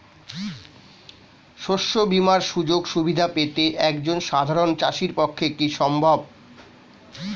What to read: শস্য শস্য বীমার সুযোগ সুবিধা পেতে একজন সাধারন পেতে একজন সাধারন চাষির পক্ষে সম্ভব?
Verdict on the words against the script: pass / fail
fail